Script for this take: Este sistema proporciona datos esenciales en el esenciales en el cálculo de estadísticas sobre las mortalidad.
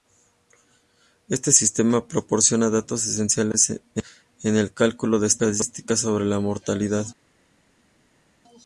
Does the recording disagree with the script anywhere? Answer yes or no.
yes